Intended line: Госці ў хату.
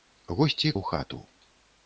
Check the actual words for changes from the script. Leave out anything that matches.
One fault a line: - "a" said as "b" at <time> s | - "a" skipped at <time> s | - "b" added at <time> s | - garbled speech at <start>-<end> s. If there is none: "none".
none